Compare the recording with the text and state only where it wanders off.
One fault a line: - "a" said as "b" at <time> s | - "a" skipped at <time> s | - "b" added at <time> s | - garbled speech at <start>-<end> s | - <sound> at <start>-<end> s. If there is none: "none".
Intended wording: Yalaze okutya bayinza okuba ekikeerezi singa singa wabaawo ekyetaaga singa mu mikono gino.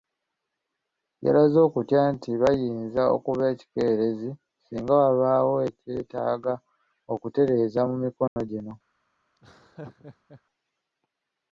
- "nti" added at 2.1 s
- "singa" skipped at 4.9 s
- "singa" said as "okutereeza" at 7.1 s
- dropout at 8.3-8.4 s
- laugh at 9.3-10.4 s